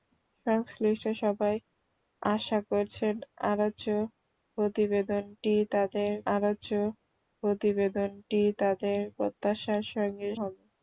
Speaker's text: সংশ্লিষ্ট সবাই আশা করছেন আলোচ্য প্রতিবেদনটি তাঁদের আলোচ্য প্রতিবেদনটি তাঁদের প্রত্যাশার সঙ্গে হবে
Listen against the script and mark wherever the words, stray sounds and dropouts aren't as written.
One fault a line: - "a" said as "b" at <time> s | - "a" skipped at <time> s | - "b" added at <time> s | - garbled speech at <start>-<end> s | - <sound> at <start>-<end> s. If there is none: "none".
none